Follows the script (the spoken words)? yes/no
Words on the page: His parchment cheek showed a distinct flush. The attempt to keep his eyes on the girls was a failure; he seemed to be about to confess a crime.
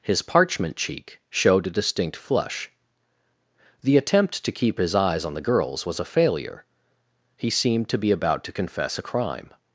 yes